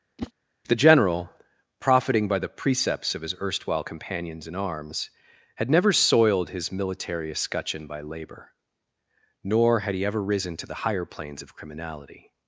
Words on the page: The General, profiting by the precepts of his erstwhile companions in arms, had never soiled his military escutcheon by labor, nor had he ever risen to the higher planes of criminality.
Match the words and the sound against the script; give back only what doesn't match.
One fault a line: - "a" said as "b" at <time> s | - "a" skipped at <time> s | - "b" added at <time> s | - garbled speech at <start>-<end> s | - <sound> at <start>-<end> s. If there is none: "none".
- whoosh at 0.2-0.3 s